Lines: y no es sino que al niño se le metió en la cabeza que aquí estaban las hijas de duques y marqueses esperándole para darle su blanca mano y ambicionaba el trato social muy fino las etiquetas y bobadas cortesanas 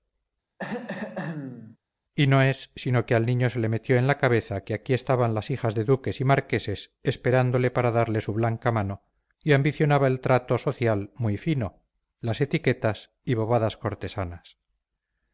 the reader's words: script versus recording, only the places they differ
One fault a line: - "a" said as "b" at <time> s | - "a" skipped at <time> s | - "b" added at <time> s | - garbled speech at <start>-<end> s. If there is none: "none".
none